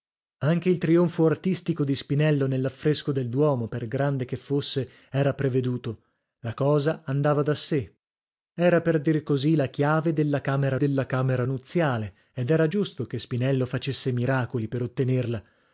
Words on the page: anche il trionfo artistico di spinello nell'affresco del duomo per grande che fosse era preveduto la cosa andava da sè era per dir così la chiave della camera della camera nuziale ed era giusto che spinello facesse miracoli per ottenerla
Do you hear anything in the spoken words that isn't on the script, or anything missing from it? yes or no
no